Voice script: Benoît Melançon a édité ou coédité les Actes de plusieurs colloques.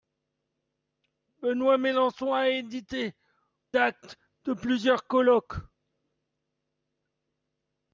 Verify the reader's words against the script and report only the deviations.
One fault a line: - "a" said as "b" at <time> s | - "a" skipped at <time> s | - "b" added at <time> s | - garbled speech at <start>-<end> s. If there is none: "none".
- "ou coédité les" skipped at 3.1 s